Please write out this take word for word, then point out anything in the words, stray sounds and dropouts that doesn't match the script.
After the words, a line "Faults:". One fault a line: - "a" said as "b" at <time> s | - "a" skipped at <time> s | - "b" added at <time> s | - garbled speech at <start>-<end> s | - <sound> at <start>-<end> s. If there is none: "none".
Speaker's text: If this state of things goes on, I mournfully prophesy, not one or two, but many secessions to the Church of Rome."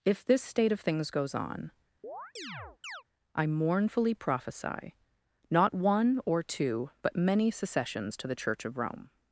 If this state of things goes on, I mournfully prophesy, not one or two, but many secessions to the Church of Rome."
Faults:
- chirp at 2.0-3.0 s